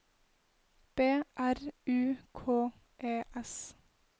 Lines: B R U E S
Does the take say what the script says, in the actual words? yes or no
no